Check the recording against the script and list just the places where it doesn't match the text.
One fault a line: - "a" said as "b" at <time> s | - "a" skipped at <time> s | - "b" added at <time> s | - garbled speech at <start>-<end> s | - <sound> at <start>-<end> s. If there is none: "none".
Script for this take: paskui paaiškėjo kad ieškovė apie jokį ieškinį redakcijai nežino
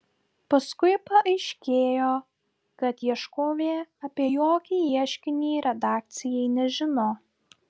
none